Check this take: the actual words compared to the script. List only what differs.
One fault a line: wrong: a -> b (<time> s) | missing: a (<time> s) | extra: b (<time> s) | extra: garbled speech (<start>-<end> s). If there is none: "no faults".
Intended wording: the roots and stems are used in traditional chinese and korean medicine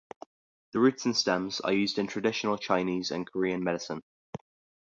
no faults